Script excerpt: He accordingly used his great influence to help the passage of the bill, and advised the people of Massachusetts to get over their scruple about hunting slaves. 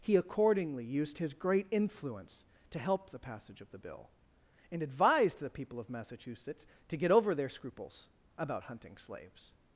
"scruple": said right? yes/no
no